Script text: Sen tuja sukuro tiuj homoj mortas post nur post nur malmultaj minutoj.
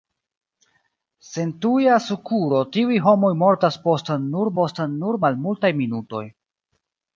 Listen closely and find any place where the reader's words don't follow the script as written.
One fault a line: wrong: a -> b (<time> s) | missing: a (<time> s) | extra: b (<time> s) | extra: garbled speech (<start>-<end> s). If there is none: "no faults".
no faults